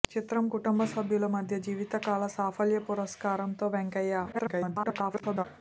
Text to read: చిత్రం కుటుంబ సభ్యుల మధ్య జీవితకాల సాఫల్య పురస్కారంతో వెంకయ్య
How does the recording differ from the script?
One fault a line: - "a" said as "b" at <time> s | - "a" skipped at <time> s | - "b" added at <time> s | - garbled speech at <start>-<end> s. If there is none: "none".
- garbled speech at 4.3-5.4 s